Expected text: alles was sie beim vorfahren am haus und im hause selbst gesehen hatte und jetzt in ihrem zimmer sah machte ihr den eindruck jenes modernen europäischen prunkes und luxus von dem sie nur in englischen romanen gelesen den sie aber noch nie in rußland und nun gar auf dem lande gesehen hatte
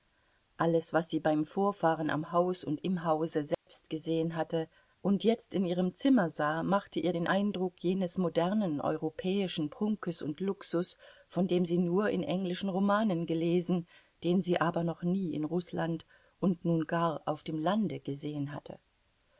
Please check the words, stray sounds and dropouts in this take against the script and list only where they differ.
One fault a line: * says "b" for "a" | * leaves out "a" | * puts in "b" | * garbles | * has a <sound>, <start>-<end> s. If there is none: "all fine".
* has a dropout, 3.5-3.7 s